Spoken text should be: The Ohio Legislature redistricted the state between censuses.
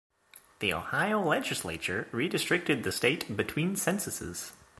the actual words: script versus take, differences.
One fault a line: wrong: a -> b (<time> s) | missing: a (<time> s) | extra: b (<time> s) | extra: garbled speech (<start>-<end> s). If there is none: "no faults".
no faults